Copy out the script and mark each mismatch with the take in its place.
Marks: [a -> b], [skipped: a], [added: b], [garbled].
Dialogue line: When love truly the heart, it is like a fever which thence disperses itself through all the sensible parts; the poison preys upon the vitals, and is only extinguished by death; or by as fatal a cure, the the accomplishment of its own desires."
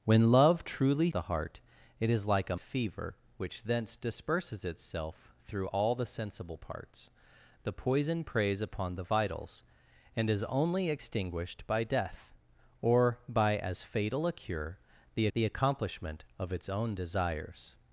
When love truly the heart, it is like a fever which thence disperses itself through all the sensible parts; the poison preys upon the vitals, and is only extinguished by death; or by as fatal a cure, the the accomplishment of its own desires."